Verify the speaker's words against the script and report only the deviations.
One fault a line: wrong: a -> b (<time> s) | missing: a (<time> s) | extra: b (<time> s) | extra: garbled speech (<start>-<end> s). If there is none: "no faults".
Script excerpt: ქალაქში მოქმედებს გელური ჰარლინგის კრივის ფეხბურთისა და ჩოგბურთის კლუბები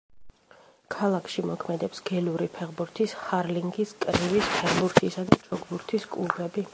extra: ფეხბურთის (2.6 s)